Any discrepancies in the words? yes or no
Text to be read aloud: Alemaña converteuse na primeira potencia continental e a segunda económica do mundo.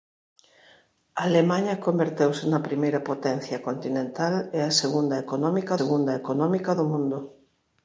yes